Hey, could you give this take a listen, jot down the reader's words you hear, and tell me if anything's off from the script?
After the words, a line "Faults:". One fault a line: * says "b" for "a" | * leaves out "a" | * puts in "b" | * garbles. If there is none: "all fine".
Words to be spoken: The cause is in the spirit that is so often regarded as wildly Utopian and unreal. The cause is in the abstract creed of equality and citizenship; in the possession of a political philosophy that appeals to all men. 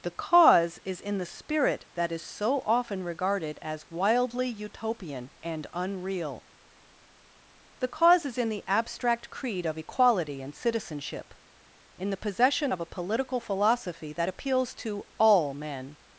The cause is in the spirit that is so often regarded as wildly Utopian and unreal. The cause is in the abstract creed of equality and citizenship; in the possession of a political philosophy that appeals to all men.
Faults:
all fine